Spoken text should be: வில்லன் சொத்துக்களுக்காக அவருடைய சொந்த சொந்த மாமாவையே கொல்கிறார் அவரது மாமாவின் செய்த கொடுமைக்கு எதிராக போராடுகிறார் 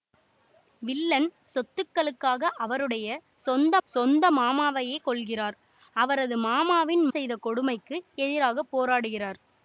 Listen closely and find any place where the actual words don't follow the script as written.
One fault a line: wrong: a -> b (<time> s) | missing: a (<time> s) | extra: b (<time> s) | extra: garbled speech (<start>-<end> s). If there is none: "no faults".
no faults